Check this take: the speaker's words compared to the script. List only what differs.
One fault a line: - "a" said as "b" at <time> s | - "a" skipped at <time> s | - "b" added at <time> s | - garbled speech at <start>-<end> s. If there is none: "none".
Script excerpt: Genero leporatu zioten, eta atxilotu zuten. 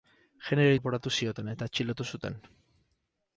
none